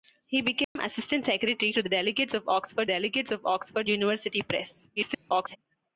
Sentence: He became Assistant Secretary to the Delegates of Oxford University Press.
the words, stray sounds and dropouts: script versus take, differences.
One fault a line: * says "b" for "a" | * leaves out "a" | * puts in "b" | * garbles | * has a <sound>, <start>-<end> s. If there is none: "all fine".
* has a dropout, 0.6-0.8 s
* puts in "Delegates of Oxford"
* garbles